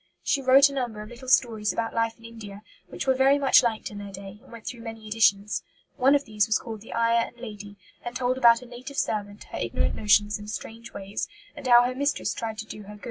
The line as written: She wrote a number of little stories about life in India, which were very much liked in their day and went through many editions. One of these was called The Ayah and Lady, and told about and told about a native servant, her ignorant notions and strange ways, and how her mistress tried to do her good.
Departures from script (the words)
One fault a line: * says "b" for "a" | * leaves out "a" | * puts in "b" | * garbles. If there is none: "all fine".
* leaves out "and told about"